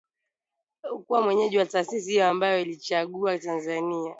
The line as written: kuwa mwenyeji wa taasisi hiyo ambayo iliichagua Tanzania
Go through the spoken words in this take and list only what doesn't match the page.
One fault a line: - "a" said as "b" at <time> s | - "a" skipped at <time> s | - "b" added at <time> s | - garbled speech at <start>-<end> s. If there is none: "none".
none